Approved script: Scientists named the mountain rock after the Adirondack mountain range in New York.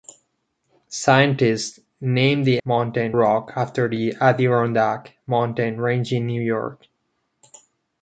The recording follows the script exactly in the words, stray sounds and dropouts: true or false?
true